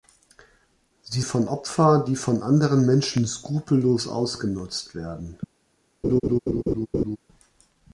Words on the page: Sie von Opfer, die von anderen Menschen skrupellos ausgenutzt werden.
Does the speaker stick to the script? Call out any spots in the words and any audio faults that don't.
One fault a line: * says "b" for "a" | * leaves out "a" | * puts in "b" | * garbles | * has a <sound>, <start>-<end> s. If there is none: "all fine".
* has a laugh, 6.0-7.2 s